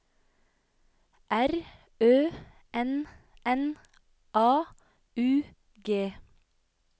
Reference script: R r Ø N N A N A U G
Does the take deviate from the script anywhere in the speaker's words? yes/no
yes